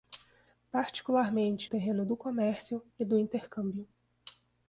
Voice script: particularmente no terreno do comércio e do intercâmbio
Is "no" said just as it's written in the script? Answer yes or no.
no